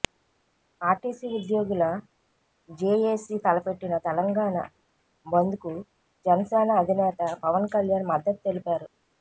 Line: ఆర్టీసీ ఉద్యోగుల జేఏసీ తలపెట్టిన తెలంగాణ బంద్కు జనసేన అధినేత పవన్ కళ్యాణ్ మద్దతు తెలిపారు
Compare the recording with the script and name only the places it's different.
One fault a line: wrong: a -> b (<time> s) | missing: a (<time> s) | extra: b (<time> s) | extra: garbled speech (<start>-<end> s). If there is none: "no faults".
no faults